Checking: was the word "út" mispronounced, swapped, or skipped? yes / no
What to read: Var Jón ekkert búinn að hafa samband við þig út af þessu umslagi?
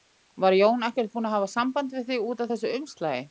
no